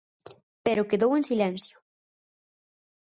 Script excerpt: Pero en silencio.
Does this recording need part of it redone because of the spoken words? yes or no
yes